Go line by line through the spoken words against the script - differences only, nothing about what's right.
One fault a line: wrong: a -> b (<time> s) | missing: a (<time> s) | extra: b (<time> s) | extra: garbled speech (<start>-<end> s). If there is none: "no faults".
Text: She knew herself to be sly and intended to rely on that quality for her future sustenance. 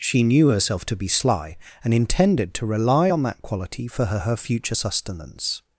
extra: her (4.2 s)